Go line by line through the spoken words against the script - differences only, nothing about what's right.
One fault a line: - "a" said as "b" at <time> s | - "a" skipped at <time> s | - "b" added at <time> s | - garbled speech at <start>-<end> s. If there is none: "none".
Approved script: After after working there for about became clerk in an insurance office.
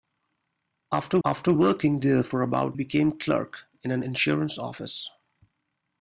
none